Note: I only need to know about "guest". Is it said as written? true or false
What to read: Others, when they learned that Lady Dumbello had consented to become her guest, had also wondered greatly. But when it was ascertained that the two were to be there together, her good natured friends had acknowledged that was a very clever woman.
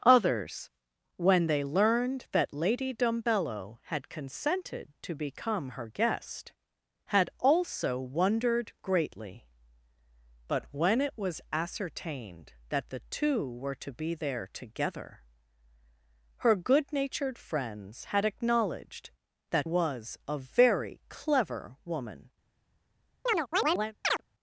true